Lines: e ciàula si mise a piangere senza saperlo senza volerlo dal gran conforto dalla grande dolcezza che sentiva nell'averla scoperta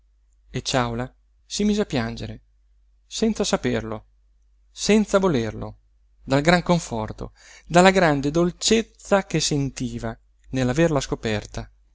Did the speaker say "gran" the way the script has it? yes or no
yes